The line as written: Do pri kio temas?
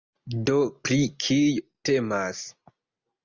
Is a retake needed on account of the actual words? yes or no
no